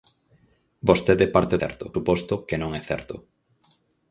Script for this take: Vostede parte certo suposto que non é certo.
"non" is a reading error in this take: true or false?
false